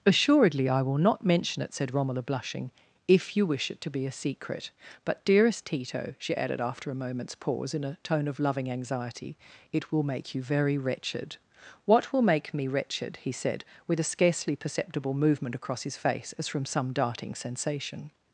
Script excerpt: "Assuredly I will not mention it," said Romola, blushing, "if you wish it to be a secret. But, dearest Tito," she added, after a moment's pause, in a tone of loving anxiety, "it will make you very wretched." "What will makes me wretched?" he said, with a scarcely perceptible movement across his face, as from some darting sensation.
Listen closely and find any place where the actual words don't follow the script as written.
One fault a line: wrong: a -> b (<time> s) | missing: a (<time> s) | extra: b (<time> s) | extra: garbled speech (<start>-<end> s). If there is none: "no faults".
wrong: makes -> make (12.2 s)